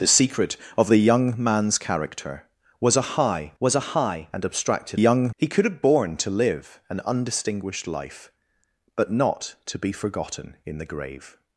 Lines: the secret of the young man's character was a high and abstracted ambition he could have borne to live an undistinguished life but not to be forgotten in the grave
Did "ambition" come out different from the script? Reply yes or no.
yes